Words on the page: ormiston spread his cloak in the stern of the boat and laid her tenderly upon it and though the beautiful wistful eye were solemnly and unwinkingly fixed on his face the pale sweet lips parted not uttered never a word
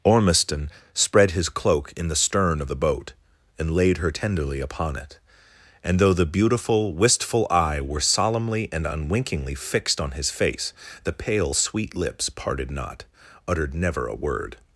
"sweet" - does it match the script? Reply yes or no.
yes